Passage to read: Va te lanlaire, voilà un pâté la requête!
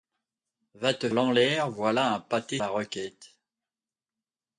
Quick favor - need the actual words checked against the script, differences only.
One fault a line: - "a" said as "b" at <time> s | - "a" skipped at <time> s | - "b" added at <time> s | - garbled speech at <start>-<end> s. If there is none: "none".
none